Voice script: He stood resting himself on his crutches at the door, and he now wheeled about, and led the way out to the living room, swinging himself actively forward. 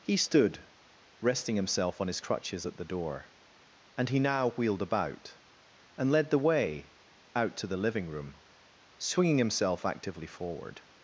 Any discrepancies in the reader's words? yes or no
no